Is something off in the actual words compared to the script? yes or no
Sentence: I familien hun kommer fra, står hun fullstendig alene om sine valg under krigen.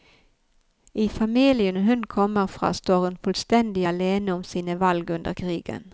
no